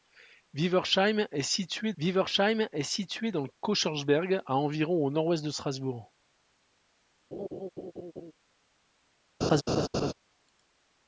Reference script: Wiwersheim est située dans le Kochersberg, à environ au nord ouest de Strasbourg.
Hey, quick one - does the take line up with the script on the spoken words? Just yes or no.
no